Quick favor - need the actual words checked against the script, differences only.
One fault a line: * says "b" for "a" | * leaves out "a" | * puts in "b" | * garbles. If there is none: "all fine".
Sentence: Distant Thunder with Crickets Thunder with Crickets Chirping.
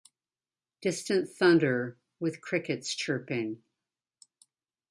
* leaves out "Thunder with Crickets"